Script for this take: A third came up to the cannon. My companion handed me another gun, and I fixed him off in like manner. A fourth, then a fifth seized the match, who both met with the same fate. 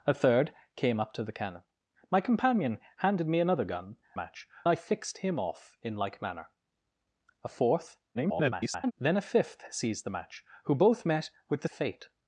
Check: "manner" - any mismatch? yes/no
no